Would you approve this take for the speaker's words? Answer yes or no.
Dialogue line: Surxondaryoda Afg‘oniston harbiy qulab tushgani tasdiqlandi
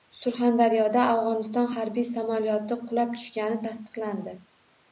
no